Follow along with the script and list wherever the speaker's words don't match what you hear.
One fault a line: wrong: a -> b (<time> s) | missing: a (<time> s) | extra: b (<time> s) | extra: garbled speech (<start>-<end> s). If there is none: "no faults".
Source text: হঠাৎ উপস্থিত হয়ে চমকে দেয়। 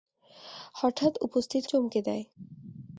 missing: হয়ে (1.6 s)